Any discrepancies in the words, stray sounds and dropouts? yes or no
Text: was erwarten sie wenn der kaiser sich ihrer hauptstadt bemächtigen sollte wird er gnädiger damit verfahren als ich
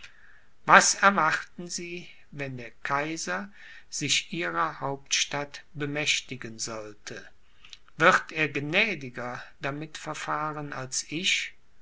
no